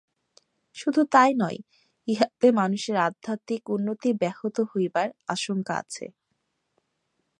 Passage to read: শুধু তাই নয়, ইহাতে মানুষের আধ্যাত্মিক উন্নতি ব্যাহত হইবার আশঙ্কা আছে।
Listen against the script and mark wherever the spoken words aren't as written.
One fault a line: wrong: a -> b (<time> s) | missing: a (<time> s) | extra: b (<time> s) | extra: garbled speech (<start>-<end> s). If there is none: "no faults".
no faults